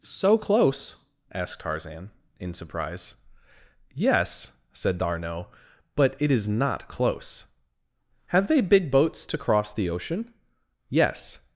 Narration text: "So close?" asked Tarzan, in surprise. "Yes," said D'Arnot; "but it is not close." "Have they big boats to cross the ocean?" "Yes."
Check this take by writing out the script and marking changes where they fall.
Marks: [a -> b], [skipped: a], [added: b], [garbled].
"So close?" asked Tarzan, in surprise. "Yes," said D'Arnot; "but it is not close." "Have they big boats to cross the ocean?" "Yes."